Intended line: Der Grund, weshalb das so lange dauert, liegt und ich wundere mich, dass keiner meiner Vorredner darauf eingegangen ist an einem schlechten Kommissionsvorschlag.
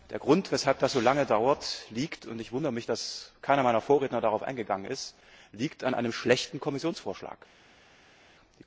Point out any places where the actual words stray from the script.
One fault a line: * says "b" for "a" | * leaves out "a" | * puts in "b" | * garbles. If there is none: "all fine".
all fine